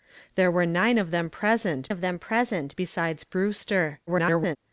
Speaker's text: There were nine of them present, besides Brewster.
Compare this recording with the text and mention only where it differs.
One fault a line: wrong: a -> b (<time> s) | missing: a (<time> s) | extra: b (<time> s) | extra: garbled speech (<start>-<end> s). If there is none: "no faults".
extra: of them present (1.9 s)
extra: garbled speech (4.1-4.6 s)